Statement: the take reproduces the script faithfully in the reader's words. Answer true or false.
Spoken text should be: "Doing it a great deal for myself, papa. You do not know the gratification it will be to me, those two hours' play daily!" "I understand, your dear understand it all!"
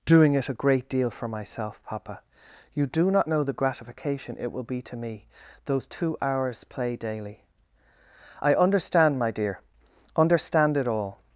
false